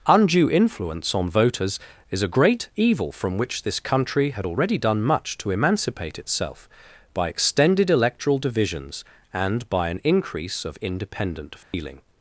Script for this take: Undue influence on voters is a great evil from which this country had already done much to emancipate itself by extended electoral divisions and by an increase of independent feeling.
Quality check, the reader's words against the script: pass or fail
pass